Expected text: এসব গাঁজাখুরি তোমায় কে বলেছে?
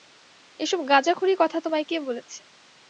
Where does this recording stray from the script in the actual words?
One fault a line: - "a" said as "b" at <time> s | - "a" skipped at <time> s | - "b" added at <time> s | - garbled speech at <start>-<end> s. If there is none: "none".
- "কথা" added at 1.4 s